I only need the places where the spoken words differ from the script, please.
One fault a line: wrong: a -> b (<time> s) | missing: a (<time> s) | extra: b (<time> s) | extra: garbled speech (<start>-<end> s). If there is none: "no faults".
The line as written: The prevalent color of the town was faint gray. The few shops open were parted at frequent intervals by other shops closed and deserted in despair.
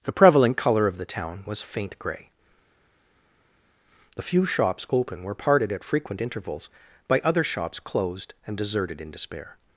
no faults